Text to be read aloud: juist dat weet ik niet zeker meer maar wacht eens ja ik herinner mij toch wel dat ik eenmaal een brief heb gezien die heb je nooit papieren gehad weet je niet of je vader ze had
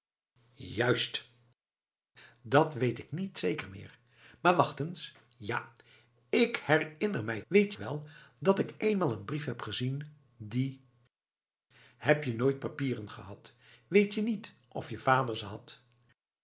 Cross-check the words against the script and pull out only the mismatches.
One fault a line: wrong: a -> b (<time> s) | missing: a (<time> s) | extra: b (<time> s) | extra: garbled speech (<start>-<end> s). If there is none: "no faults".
wrong: toch -> weet (7.5 s)